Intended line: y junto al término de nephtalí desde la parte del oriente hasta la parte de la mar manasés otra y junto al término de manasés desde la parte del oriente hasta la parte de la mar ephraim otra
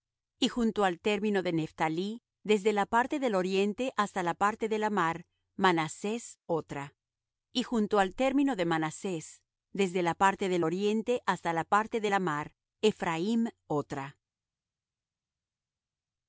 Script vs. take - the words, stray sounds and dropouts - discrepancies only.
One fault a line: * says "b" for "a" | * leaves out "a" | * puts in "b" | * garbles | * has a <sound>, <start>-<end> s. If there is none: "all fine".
all fine